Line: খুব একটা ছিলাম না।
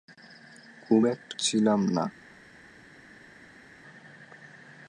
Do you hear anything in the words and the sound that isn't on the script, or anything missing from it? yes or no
no